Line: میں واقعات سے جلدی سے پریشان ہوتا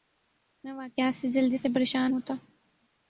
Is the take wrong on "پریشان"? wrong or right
right